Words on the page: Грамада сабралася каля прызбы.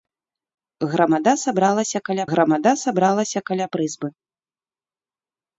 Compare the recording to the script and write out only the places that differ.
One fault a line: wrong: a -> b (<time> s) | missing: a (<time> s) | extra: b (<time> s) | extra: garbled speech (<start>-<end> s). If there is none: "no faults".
extra: грамада сабралася каля (2.3 s)